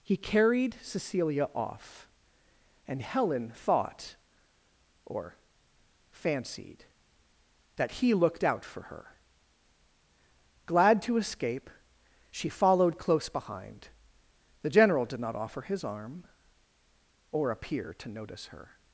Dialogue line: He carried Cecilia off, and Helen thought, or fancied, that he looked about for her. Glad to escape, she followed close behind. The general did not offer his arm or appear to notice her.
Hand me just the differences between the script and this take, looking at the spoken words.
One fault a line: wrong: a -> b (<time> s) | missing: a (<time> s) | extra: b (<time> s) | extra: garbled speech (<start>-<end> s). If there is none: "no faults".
wrong: about -> out (8.4 s)